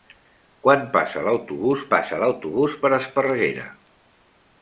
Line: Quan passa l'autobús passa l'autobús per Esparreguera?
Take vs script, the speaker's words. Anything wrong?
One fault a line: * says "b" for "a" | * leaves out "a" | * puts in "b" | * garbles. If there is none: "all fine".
all fine